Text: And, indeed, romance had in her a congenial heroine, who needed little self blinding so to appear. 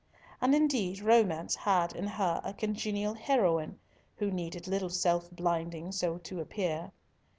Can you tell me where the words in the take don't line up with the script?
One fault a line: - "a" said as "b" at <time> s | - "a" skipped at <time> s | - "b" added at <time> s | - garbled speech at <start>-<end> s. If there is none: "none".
none